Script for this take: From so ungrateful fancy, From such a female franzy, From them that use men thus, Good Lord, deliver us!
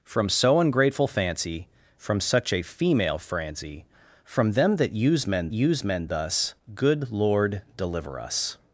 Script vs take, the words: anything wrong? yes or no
yes